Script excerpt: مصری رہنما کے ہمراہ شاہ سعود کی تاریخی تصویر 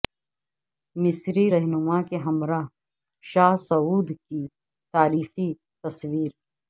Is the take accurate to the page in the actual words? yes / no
yes